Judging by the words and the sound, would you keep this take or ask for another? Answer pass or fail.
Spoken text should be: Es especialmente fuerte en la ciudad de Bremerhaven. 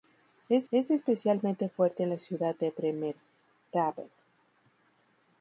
fail